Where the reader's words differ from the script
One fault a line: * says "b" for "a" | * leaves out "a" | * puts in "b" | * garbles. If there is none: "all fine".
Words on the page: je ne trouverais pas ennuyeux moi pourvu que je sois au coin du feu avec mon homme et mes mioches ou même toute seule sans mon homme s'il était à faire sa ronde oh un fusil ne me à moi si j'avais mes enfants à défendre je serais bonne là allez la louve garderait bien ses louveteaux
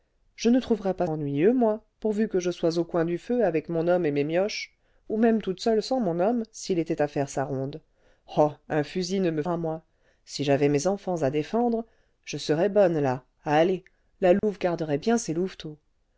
all fine